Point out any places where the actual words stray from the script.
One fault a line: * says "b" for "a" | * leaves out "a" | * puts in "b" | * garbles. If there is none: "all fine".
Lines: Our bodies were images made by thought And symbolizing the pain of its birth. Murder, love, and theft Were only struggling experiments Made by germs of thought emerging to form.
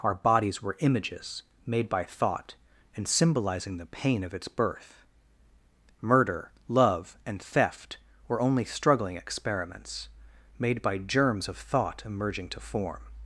all fine